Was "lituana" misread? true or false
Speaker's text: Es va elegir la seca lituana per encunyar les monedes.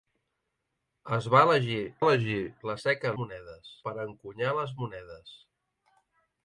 true